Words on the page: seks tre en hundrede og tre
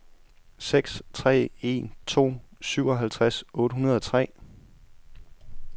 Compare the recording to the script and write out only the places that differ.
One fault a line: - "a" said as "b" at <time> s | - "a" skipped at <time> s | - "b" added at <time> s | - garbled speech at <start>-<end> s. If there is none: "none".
- "to syvoghalvtreds otte" added at 2.1 s